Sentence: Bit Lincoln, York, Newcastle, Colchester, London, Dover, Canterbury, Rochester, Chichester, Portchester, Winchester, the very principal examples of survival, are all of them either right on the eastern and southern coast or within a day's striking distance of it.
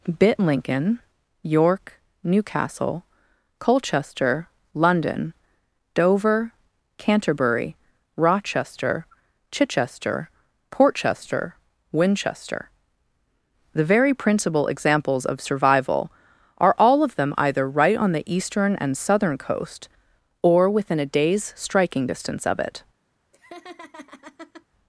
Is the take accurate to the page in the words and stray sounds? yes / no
no